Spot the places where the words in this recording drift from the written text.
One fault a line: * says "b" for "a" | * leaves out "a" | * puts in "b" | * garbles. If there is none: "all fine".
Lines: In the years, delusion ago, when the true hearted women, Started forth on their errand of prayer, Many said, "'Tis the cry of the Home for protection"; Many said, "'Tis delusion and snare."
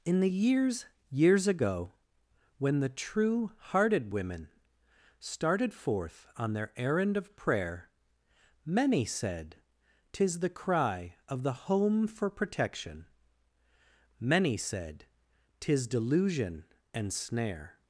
* says "years" for "delusion"